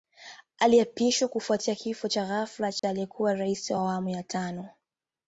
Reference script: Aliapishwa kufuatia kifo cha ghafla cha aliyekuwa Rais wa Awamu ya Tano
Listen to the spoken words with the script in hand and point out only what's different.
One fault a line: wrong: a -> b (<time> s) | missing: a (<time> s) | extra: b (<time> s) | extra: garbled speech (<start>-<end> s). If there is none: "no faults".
no faults